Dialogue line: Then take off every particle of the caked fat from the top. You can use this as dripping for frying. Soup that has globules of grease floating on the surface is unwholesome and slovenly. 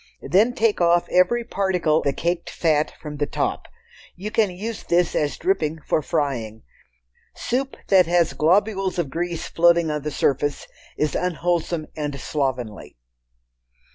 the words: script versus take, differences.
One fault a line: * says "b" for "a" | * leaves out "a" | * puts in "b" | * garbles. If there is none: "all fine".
* leaves out "of"